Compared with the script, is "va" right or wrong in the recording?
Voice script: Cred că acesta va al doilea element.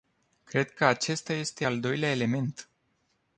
wrong